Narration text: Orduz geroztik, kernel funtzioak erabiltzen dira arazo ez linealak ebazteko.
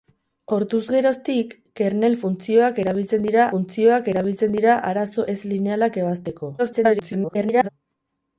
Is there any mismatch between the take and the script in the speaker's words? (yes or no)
yes